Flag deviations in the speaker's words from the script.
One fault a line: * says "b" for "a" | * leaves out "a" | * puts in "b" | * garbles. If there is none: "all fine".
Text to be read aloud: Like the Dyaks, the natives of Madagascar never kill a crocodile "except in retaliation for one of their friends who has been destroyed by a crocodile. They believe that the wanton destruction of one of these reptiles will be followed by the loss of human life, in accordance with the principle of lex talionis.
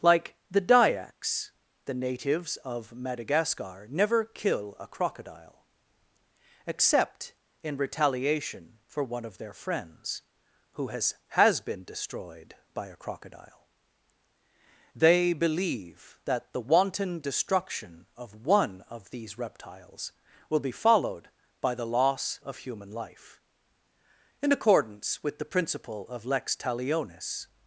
* puts in "has"